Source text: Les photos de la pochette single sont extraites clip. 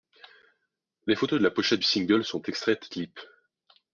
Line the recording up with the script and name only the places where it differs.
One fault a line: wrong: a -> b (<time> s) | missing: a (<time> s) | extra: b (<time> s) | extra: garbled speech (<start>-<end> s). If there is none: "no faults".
no faults